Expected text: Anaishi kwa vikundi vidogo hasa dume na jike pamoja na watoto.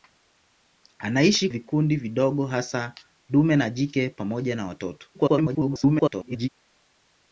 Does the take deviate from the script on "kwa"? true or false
true